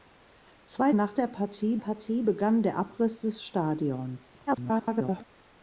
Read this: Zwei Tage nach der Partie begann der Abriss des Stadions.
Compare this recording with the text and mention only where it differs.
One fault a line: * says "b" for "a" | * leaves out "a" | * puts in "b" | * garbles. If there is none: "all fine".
* leaves out "Tage"
* puts in "Partie"
* garbles